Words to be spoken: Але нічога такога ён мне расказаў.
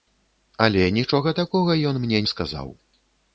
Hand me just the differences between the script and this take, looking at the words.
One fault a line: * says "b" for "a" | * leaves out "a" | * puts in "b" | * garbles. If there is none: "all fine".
all fine